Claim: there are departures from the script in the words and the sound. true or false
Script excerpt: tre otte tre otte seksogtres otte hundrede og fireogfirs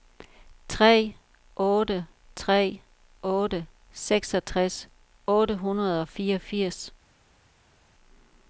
false